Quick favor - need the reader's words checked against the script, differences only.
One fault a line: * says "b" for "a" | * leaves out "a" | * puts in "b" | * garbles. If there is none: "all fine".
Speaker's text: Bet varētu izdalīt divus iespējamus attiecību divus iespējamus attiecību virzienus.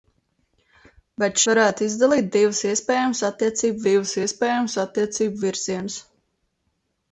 all fine